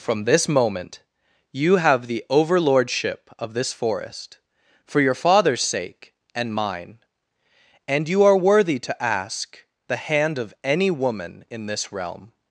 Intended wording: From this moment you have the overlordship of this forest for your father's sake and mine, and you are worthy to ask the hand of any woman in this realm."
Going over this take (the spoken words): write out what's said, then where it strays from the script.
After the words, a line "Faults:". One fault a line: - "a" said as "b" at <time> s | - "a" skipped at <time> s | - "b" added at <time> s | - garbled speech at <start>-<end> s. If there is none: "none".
From this moment you have the overlordship of this forest for your father's sake and mine, and you are worthy to ask the hand of any woman in this realm."
Faults:
none